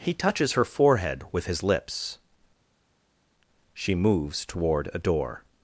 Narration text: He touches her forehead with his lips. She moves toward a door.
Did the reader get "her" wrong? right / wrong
right